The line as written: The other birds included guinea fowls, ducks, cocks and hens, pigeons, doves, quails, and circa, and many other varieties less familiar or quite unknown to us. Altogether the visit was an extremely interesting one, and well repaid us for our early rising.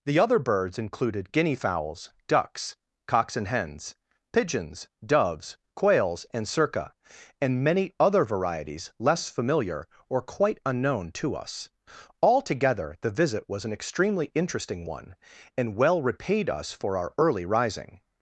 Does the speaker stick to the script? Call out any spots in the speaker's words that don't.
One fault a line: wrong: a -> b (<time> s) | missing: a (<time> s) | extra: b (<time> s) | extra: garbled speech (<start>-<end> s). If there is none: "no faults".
no faults